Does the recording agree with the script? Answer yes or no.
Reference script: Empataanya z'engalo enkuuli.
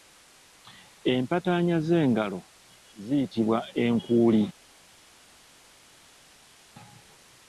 no